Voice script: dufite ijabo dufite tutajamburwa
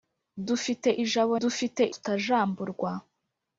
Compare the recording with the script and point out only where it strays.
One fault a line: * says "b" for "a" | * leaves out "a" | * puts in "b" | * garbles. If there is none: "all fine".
all fine